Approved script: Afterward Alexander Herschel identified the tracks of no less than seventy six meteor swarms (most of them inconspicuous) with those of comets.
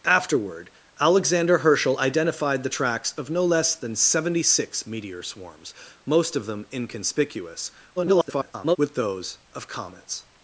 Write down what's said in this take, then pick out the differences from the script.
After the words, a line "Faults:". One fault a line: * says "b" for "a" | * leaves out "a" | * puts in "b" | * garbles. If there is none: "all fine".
Afterward Alexander Herschel identified the tracks of no less than seventy six meteor swarms (most of them inconspicuous) [garbled] with those of comets.
Faults:
* garbles